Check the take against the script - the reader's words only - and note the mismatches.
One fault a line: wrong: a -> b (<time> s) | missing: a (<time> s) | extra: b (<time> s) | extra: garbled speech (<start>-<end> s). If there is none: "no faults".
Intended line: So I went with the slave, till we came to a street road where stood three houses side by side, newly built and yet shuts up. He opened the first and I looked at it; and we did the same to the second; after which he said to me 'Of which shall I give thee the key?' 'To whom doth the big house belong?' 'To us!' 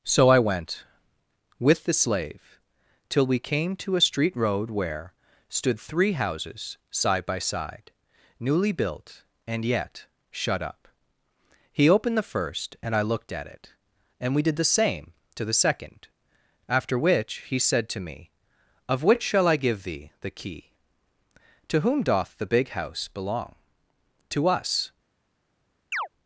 wrong: shuts -> shut (10.3 s)